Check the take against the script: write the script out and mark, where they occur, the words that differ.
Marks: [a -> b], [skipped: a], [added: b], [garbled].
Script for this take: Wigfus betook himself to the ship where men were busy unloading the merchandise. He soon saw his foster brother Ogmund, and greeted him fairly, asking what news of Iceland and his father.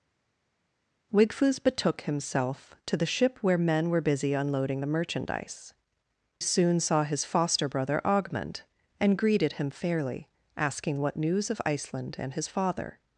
Wigfus betook himself to the ship where men were busy unloading the merchandise. [skipped: He] soon saw his foster brother Ogmund, and greeted him fairly, asking what news of Iceland and his father.